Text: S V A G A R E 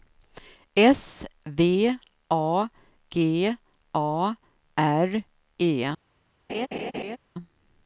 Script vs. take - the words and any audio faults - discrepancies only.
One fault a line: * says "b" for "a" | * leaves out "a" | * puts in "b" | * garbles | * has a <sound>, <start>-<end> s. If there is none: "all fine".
* has a laugh, 6.5-7.2 s